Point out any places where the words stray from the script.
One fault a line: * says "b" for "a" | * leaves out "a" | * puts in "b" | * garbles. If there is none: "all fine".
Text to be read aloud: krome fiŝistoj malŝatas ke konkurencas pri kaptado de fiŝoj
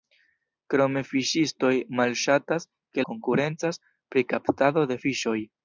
all fine